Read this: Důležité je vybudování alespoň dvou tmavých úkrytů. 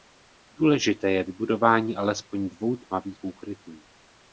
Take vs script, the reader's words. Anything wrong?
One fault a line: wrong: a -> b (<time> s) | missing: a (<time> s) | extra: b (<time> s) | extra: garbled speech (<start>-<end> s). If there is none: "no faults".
no faults